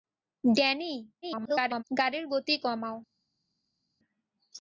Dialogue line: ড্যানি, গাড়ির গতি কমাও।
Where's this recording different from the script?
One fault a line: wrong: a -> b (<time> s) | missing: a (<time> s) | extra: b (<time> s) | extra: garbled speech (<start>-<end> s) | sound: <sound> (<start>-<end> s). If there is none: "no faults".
extra: garbled speech (1.2-1.8 s)